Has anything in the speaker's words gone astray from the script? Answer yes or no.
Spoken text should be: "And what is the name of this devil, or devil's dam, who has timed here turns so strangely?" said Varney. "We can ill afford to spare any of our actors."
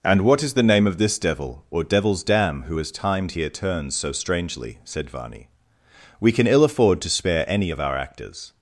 no